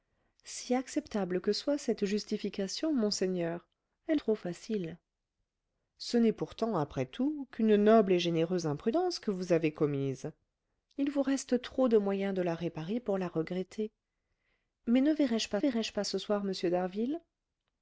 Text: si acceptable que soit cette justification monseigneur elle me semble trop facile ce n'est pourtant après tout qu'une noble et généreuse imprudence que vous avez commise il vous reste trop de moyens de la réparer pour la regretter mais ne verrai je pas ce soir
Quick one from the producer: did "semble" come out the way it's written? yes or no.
no